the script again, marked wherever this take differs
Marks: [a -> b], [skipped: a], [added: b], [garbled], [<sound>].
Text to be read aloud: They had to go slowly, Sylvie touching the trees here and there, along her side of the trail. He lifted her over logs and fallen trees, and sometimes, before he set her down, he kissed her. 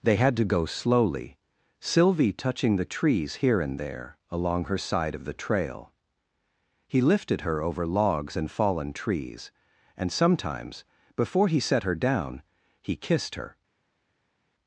They had to go slowly, Sylvie touching the trees here and there, along her side of the trail. He lifted her over logs and fallen trees, and sometimes, before he set her down, he kissed her.